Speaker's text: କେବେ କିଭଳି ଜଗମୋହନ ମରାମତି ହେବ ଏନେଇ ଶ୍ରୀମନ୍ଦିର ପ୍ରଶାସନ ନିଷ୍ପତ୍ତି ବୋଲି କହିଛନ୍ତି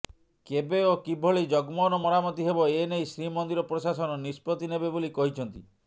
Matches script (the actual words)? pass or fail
fail